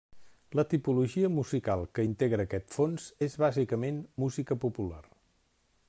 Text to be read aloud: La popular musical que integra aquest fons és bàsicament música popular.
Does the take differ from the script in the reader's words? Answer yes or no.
yes